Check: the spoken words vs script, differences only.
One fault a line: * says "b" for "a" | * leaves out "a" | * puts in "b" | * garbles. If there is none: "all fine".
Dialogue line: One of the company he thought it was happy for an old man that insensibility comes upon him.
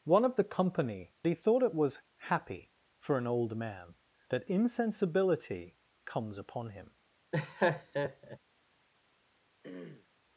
all fine